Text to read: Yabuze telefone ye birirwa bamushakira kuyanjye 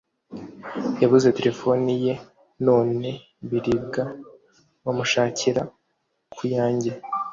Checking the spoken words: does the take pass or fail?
fail